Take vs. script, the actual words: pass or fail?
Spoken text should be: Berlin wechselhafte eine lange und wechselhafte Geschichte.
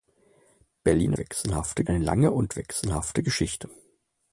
pass